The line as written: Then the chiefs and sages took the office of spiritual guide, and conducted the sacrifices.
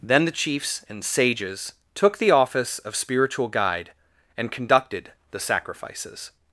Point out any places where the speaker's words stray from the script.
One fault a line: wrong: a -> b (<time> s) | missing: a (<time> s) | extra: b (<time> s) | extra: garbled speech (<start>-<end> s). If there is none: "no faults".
no faults